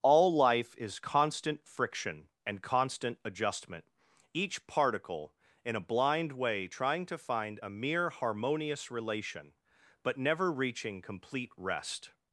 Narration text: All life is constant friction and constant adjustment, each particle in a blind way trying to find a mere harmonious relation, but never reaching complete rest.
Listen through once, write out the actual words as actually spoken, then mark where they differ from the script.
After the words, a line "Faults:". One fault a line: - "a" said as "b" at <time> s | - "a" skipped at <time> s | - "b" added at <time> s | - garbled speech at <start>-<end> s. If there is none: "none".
All life is constant friction and constant adjustment, each particle in a blind way trying to find a mere harmonious relation, but never reaching complete rest.
Faults:
none